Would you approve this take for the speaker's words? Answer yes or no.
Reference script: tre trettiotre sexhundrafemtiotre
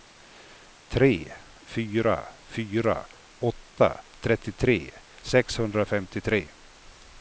no